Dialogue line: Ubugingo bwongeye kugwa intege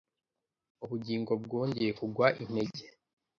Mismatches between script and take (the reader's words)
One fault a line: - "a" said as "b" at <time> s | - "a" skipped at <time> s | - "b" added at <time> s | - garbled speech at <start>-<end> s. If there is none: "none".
none